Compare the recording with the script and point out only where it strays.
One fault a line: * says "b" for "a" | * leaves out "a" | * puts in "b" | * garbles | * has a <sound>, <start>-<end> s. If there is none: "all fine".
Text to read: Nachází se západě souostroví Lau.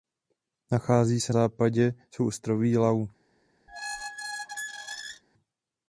* has a squeak, 3.7-5.2 s